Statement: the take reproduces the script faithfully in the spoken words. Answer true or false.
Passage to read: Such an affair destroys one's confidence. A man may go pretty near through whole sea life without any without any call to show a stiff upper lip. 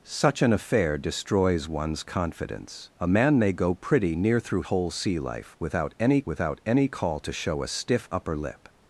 true